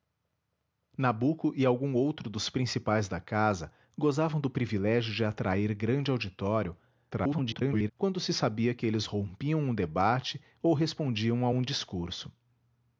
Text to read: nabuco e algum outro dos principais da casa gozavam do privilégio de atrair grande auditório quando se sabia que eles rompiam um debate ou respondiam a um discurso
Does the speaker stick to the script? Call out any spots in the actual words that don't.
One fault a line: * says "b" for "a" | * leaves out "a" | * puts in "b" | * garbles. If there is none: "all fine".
* garbles